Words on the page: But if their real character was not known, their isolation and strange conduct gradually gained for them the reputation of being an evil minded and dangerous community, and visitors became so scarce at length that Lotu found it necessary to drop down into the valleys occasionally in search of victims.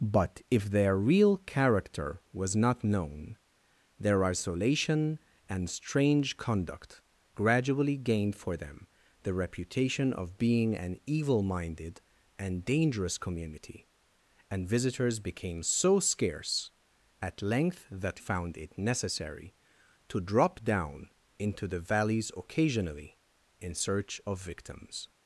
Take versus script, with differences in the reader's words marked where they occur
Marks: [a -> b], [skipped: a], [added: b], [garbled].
But if their real character was not known, their isolation and strange conduct gradually gained for them the reputation of being an evil minded and dangerous community, and visitors became so scarce at length that [skipped: Lotu] found it necessary to drop down into the valleys occasionally in search of victims.